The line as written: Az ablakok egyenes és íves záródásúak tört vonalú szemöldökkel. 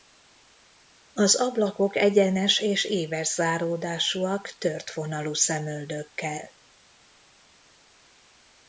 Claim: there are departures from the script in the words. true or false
false